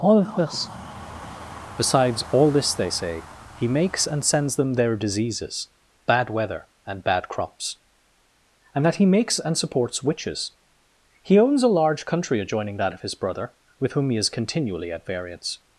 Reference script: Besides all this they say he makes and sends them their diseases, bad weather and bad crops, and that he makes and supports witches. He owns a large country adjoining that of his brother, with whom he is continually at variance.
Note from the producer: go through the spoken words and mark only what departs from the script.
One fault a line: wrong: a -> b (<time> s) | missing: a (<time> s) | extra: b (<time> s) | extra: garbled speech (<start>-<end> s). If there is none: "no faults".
extra: all of this (0.0 s)